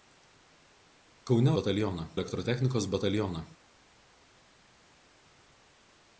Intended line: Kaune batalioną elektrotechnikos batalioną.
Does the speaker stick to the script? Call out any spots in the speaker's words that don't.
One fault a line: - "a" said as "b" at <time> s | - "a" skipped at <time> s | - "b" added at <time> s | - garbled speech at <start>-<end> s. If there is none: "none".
none